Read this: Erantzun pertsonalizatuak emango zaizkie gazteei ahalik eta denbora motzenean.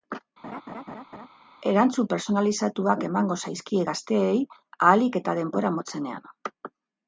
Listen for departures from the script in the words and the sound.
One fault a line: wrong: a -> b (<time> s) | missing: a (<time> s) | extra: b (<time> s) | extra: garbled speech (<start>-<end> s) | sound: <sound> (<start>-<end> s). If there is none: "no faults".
sound: laugh (0.4-1.3 s)